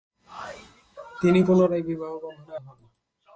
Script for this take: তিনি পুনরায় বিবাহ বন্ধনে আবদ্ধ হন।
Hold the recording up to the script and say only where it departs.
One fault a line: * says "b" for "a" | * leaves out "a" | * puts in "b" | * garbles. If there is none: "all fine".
* leaves out "আবদ্ধ"